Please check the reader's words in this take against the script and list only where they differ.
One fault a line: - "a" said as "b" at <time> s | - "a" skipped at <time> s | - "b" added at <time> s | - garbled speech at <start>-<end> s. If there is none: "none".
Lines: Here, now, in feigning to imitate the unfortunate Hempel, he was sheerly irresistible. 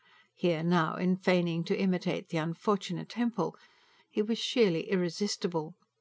none